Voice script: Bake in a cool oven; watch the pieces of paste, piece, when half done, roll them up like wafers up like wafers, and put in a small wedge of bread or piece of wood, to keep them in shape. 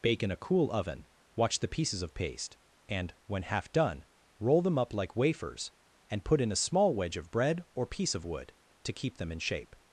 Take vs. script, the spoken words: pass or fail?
fail